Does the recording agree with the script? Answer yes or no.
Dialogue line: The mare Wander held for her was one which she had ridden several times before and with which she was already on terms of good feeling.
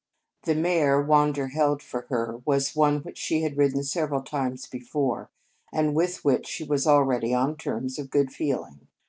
yes